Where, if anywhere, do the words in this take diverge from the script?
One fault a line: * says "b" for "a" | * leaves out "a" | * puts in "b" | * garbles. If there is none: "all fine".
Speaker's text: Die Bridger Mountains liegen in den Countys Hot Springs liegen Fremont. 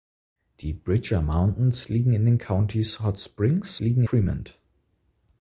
all fine